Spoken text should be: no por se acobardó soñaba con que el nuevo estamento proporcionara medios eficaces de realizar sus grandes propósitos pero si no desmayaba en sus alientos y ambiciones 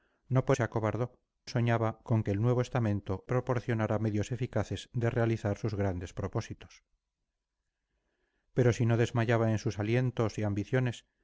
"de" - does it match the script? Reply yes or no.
yes